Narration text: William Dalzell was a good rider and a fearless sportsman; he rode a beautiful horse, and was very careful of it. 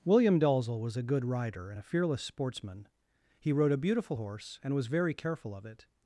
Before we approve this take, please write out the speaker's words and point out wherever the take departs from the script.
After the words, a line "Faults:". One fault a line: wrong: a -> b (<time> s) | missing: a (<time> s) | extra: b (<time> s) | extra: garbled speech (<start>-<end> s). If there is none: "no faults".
William Dalzell was a good rider and a fearless sportsman; he rode a beautiful horse, and was very careful of it.
Faults:
no faults